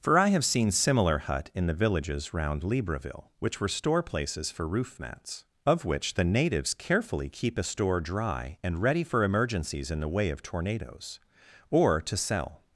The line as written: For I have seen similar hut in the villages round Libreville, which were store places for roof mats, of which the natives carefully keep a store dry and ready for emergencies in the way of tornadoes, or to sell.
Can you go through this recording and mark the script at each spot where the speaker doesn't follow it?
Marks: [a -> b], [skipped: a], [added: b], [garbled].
For I have seen similar hut in the villages round Libreville, which were store places for roof mats, of which the natives carefully keep a store dry and ready for emergencies in the way of tornadoes, or to sell.